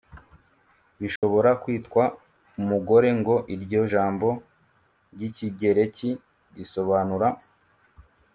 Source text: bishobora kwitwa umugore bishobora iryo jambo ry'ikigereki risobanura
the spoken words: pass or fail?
fail